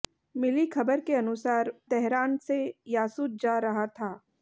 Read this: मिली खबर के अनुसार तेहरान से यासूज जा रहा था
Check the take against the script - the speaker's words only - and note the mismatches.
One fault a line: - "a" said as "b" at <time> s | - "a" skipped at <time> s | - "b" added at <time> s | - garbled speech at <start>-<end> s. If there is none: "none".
none